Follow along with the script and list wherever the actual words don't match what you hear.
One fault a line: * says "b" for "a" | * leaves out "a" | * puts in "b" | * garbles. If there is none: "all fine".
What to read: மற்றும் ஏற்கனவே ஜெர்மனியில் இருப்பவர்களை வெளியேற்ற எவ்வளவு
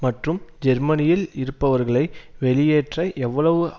* leaves out "ஏற்கனவே"